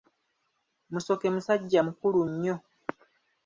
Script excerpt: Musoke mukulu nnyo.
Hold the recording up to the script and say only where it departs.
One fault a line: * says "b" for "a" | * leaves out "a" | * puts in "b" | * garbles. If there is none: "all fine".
* puts in "musajja"